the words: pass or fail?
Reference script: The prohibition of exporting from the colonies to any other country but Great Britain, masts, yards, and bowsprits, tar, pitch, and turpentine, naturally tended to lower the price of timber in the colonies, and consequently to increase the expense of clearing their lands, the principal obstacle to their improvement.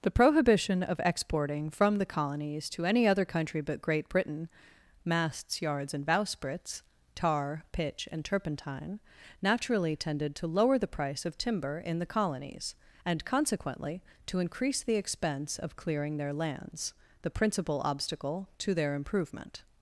pass